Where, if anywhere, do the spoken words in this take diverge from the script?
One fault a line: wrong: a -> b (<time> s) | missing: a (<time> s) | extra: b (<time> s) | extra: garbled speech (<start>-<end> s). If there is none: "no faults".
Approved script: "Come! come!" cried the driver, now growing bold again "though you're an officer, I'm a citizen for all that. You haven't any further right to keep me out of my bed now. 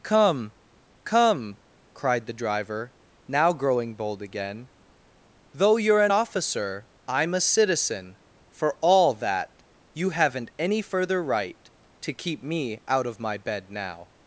no faults